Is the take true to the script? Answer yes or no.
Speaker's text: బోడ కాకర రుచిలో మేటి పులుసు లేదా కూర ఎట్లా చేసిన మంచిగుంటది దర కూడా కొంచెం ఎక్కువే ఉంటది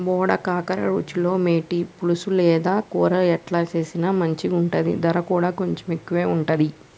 yes